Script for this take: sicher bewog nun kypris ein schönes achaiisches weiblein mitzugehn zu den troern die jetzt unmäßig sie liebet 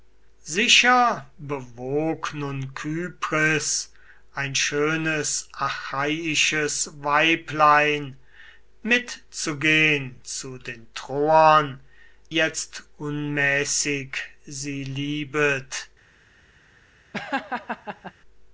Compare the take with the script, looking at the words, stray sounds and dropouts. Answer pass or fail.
fail